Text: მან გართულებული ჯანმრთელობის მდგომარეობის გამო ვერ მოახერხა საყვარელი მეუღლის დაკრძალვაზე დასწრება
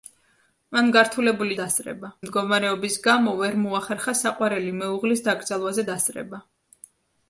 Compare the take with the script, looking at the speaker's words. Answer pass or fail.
fail